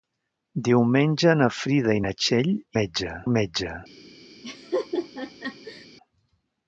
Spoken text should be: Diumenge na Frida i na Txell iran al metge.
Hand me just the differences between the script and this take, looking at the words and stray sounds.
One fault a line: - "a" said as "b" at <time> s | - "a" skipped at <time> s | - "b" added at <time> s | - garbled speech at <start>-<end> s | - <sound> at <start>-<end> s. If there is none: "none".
- "iran" said as "metge" at 2.8 s
- laugh at 4.4-5.9 s